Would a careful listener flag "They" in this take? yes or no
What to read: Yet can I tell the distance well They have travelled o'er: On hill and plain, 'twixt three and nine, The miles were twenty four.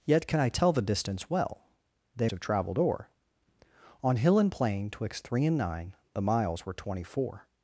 no